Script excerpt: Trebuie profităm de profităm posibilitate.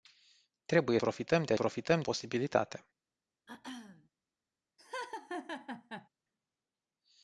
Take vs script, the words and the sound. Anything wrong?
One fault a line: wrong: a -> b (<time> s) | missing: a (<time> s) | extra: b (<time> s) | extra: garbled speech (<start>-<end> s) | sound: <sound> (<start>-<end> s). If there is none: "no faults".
sound: throat clearing (3.5-4.1 s)
sound: laugh (4.8-6.1 s)